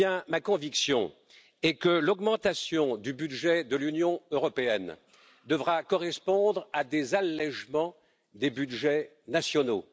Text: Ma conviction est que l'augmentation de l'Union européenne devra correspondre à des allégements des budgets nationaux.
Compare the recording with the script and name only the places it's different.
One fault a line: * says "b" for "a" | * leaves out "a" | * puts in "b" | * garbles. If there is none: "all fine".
* puts in "du budget"